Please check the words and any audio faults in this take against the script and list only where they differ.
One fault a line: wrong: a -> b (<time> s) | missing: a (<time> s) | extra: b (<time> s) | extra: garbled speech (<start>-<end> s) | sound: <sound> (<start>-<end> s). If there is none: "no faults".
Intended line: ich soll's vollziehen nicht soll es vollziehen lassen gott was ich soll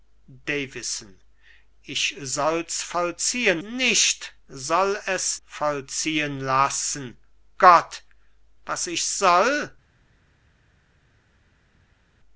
no faults